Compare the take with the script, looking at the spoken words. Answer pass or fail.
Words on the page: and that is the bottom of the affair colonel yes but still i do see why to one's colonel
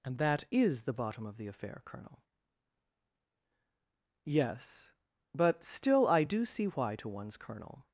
pass